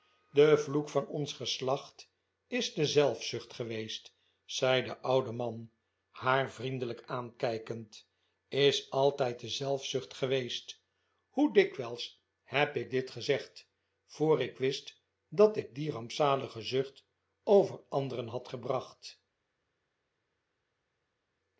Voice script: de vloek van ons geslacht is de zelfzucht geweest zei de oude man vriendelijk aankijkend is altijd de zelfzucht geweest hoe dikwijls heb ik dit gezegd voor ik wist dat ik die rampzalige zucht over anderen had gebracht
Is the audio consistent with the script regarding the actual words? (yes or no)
no